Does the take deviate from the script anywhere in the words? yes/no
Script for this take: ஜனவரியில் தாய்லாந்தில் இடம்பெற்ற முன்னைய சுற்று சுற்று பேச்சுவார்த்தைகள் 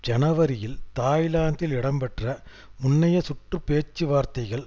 yes